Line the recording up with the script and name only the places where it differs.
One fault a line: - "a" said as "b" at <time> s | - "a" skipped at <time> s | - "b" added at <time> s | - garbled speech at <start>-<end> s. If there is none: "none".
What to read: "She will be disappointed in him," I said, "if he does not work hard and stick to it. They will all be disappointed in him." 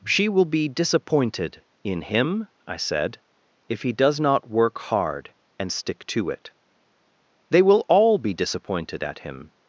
- "in" said as "at" at 9.0 s